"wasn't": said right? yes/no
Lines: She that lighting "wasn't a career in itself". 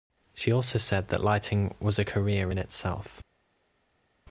no